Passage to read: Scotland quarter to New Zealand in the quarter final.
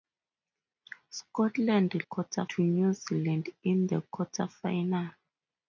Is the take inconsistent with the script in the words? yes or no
no